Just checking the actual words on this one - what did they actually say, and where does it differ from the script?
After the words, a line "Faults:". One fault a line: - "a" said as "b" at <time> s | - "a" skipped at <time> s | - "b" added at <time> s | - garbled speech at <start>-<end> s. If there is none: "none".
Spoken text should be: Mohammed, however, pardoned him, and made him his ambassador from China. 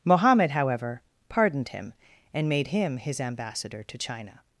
Mohammed, however, pardoned him, and made him his ambassador to China.
Faults:
- "from" said as "to" at 3.8 s